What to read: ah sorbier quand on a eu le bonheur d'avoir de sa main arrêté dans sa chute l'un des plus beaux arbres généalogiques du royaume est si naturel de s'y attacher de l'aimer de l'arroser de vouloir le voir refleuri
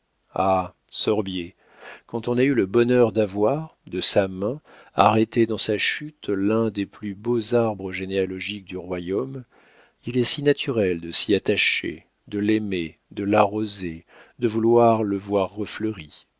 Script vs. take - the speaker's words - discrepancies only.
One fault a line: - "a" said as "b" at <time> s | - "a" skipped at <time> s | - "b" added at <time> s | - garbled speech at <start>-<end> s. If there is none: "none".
- "il" added at 10.1 s